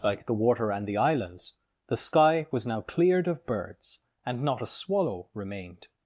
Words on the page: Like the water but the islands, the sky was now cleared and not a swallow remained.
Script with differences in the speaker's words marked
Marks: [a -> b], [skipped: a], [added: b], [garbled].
Like the water [but -> and] the islands, the sky was now cleared [added: of birds] and not a swallow remained.